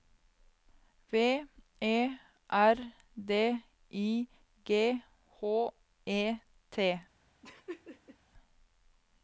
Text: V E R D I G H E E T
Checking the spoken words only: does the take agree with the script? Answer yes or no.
no